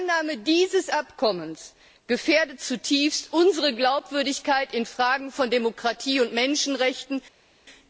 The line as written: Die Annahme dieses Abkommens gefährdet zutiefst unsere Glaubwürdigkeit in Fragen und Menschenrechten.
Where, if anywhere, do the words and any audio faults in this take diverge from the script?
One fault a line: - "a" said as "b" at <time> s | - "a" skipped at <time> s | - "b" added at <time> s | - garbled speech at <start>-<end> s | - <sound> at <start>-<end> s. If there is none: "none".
- "von Demokratie" added at 5.3 s